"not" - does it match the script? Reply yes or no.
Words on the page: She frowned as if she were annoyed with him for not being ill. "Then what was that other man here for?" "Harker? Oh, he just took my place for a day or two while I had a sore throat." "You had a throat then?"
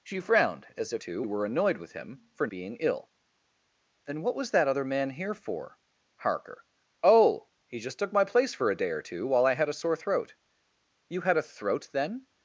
no